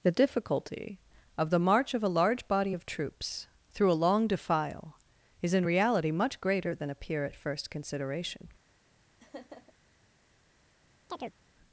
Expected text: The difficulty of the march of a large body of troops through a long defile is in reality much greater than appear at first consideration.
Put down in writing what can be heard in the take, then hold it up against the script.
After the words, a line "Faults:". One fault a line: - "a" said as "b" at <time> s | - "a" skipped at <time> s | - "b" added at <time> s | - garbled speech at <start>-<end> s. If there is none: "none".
The difficulty of the march of a large body of troops through a long defile is in reality much greater than appear at first consideration.
Faults:
none